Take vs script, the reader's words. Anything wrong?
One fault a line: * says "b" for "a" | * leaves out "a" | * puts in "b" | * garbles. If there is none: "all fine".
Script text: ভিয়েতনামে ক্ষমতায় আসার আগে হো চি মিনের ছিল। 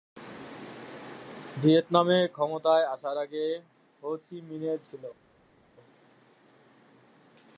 all fine